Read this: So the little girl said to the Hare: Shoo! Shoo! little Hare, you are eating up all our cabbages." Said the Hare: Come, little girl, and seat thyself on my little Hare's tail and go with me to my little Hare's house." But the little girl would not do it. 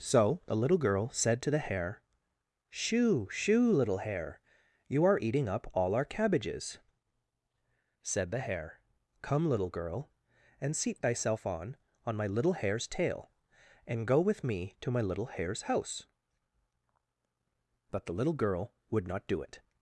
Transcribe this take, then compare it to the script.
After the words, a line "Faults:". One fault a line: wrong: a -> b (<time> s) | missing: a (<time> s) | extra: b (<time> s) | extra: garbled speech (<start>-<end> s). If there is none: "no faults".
So the little girl said to the Hare: Shoo! Shoo! little Hare, you are eating up all our cabbages." Said the Hare: Come, little girl, and seat thyself on on my little Hare's tail and go with me to my little Hare's house." But the little girl would not do it.
Faults:
extra: on (12.0 s)